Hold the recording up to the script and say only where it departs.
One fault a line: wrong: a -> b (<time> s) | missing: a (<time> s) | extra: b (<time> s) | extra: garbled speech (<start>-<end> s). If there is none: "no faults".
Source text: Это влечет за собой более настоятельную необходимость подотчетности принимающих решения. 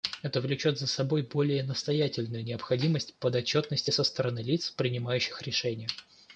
extra: со стороны лиц (3.9 s)